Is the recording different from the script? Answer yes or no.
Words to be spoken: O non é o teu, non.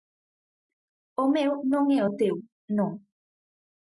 yes